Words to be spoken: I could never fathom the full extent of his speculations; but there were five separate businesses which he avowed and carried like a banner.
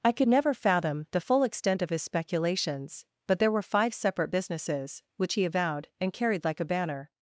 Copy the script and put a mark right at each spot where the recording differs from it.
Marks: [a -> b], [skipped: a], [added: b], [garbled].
I could never fathom the full extent of his speculations; but there were five separate businesses which he avowed and carried like a banner.